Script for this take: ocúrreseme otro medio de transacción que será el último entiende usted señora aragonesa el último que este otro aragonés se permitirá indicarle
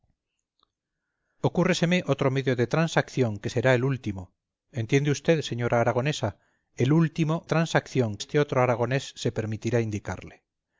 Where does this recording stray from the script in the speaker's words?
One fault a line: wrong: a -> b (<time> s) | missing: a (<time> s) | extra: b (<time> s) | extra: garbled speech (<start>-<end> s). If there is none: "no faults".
wrong: que -> transacción (7.4 s)